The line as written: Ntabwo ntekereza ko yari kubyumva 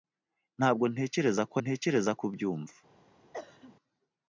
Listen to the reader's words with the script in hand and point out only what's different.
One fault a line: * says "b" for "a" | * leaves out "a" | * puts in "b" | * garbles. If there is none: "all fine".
* says "ntekereza" for "yari"